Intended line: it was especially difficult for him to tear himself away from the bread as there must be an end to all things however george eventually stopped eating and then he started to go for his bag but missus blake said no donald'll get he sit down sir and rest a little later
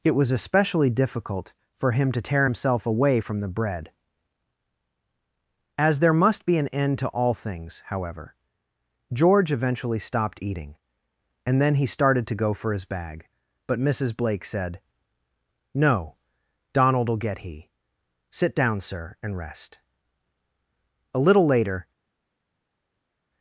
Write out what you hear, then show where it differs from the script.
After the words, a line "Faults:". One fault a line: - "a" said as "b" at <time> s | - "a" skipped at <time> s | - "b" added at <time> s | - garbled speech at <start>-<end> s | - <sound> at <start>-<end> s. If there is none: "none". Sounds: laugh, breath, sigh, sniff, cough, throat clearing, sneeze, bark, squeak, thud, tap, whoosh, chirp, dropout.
it was especially difficult for him to tear himself away from the bread as there must be an end to all things however george eventually stopped eating and then he started to go for his bag but missus blake said no donald'll get he sit down sir and rest a little later
Faults:
none